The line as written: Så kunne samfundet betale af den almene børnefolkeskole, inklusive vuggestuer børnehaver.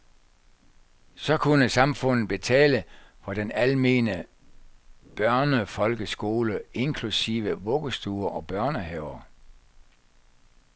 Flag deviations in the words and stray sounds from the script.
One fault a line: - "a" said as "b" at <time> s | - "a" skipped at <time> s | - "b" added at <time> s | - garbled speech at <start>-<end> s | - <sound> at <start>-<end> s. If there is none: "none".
- "af" said as "for" at 3.2 s
- "og" added at 8.3 s